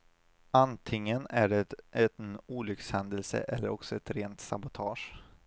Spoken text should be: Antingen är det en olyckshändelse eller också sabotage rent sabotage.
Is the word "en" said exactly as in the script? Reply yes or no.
yes